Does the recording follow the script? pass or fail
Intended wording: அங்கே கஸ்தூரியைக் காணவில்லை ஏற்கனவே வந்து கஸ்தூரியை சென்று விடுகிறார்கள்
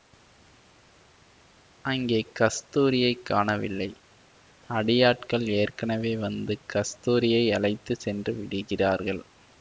fail